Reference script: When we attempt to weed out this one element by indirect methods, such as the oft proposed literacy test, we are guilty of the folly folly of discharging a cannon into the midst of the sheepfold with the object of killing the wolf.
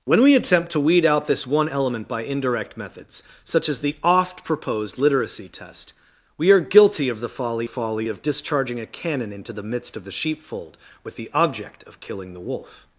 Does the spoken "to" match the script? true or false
true